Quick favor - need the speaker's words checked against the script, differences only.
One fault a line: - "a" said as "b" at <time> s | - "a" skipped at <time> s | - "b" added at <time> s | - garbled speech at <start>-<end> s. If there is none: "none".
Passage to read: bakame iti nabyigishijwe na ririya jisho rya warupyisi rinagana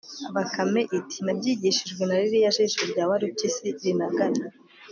none